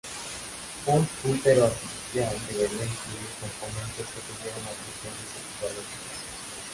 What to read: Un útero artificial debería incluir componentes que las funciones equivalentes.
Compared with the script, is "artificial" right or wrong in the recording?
right